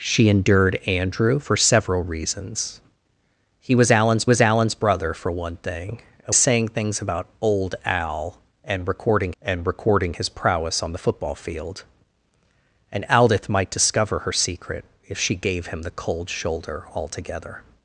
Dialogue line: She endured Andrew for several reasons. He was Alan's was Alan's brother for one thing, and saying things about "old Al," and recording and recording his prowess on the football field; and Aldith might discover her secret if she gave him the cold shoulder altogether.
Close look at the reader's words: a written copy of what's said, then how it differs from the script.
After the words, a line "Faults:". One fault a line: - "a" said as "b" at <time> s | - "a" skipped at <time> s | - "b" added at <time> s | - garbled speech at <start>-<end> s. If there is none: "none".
She endured Andrew for several reasons. He was Alan's was Alan's brother for one thing, and saying things about "old Al," and recording and recording his prowess on the football field; and Aldith might discover her secret if she gave him the cold shoulder altogether.
Faults:
none